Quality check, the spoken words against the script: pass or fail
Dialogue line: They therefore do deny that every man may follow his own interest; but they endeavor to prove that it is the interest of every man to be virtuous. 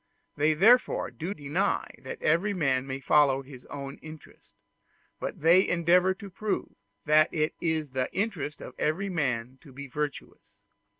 pass